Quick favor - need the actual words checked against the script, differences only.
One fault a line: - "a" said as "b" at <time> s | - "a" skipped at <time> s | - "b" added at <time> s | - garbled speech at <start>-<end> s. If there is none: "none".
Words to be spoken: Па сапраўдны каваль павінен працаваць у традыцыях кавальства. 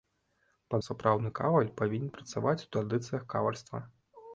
none